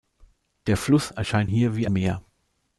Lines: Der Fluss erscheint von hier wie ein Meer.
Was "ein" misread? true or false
true